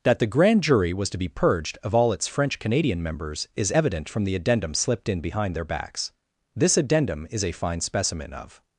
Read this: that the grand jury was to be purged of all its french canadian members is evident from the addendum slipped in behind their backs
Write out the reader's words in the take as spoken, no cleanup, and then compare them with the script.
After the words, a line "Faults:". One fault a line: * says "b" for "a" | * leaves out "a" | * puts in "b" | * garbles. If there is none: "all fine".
that the grand jury was to be purged of all its french canadian members is evident from the addendum slipped in behind their backs this addendum is a fine specimen of
Faults:
* puts in "this addendum is a fine specimen of"